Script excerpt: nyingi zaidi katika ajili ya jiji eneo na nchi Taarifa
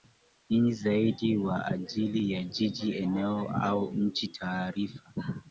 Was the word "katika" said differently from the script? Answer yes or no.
yes